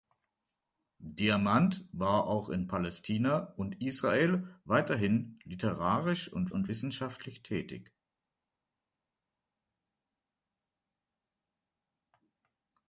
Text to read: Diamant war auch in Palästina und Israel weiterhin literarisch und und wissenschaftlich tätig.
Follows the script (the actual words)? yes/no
yes